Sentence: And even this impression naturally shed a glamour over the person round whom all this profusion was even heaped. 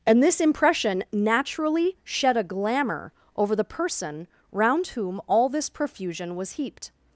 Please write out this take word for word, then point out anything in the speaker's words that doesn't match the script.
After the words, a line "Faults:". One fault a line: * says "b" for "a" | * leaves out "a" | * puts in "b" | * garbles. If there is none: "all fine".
And this impression naturally shed a glamour over the person round whom all this profusion was heaped.
Faults:
* leaves out "even"
* leaves out "even"